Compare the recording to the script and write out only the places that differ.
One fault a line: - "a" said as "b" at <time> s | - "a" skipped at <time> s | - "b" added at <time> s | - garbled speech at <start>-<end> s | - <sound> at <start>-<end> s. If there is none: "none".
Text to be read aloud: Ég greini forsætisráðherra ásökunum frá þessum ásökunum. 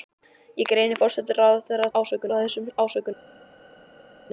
none